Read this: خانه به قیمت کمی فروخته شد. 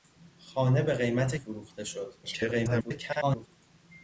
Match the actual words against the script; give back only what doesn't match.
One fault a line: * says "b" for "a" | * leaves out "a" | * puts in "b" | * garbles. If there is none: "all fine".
* leaves out "کمی"
* garbles